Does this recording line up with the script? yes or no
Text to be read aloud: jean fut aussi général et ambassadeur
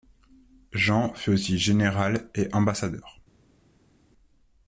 yes